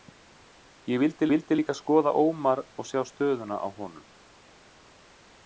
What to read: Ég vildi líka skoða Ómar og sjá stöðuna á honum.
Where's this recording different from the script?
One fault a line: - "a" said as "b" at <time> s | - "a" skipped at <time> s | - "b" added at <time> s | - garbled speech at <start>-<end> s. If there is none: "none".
- "vildi" added at 1.3 s